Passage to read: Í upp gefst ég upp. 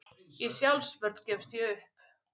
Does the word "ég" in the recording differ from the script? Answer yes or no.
no